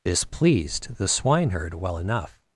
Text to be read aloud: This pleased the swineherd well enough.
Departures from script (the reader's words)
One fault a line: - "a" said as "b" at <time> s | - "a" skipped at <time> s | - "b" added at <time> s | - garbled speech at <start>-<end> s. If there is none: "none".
none